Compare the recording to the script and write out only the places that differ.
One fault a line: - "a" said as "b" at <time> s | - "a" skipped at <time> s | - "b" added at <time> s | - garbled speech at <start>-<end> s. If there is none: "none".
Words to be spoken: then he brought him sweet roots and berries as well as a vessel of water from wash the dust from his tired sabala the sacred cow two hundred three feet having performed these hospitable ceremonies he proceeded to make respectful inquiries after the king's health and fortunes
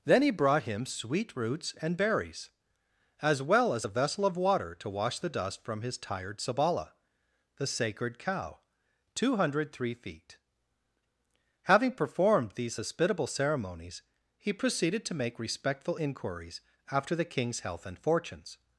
- "from" said as "to" at 4.8 s